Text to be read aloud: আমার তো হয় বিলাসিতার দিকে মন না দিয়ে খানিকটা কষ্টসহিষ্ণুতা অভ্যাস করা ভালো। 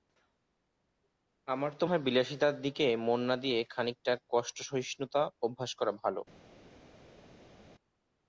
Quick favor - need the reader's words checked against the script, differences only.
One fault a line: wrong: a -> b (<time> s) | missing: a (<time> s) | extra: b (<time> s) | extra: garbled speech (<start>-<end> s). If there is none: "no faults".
no faults